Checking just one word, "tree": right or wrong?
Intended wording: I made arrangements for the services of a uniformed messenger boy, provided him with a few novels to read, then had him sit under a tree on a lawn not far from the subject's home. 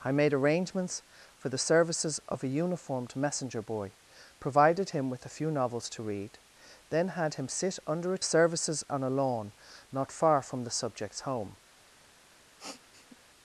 wrong